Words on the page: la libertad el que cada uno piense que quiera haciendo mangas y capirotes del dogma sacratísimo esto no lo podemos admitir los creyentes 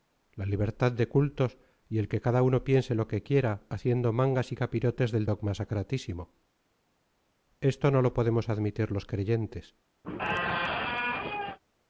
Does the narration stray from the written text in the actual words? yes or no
yes